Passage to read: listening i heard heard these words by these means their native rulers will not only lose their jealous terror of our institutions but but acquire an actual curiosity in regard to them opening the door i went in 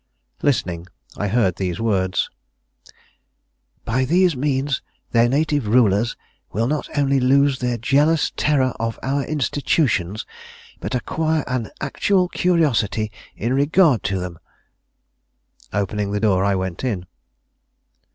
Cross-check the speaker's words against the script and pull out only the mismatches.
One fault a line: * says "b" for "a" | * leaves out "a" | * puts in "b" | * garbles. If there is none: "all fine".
* leaves out "heard"
* leaves out "but"